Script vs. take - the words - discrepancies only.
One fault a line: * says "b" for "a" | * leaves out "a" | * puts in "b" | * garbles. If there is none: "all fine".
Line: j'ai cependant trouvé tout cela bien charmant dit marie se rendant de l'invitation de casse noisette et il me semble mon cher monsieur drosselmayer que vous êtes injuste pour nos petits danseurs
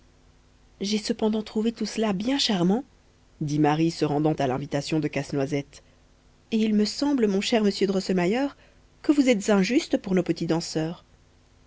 * says "à" for "de"